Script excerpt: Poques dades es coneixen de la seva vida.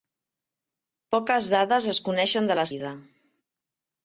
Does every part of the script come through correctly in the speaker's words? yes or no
no